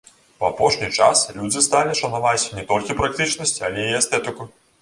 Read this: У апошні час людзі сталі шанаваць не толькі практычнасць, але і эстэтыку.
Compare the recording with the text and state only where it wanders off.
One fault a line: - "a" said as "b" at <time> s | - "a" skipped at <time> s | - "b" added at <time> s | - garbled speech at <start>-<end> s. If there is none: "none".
none